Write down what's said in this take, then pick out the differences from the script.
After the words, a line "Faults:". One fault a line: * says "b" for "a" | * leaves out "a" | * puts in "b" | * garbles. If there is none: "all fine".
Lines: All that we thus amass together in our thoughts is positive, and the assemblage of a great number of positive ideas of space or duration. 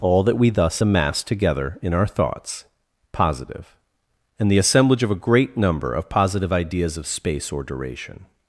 All that we thus amass together in our thoughts positive, and the assemblage of a great number of positive ideas of space or duration.
Faults:
* leaves out "is"